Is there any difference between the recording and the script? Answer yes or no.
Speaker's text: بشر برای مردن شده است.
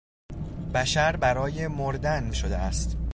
no